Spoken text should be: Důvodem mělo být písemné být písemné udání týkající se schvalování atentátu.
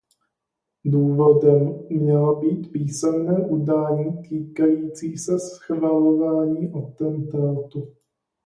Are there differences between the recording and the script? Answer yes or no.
yes